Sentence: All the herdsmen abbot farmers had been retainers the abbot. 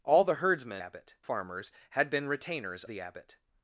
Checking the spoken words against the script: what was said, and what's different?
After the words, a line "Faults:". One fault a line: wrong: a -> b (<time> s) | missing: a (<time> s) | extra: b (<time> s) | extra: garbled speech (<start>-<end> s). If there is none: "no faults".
All the herdsmen abbot farmers had been retainers the abbot.
Faults:
no faults